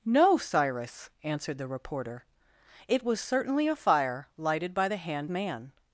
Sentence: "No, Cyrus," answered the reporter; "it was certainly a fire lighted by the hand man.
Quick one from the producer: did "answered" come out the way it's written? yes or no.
yes